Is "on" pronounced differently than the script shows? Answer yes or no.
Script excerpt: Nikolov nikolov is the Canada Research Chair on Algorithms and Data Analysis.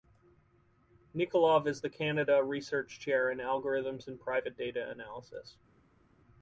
yes